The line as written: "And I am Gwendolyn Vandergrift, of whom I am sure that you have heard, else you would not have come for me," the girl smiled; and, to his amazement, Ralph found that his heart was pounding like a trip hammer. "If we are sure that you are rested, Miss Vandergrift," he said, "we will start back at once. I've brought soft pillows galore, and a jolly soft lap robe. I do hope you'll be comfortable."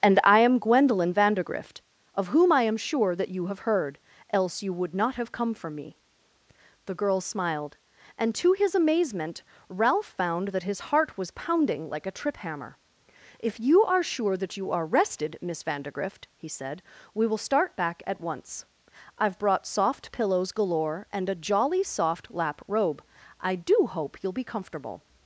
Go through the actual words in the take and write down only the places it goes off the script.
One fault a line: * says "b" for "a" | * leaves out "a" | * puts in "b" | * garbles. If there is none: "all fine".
* says "you" for "we"